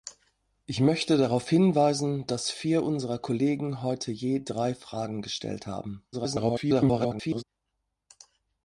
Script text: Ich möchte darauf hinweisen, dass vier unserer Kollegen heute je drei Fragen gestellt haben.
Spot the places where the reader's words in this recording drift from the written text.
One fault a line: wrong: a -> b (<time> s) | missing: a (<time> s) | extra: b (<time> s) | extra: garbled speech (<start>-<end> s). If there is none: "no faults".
extra: garbled speech (6.1-7.4 s)